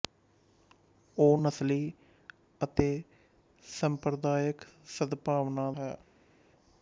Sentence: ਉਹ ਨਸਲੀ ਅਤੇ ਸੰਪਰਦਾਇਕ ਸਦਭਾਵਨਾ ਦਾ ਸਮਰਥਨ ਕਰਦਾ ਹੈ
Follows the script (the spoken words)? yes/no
no